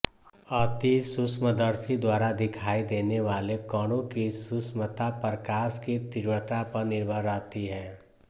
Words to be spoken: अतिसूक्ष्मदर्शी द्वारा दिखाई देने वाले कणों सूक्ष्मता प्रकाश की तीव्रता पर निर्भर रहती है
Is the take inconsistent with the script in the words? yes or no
yes